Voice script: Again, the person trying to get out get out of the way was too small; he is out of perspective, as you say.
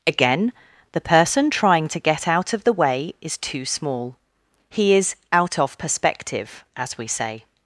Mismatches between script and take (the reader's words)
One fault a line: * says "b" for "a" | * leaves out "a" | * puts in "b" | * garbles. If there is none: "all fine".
* leaves out "get out"
* says "is" for "was"
* says "we" for "you"